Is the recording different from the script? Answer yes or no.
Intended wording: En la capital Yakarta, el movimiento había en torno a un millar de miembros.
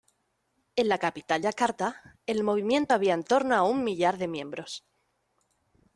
no